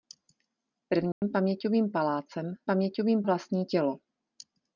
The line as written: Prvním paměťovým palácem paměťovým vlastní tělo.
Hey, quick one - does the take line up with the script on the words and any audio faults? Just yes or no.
no